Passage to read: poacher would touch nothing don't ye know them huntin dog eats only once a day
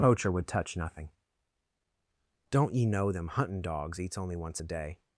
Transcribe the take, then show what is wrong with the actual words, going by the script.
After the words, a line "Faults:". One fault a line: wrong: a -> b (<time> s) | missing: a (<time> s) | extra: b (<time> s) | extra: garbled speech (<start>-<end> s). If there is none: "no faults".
poacher would touch nothing don't ye know them huntin dogs eats only once a day
Faults:
wrong: dog -> dogs (3.6 s)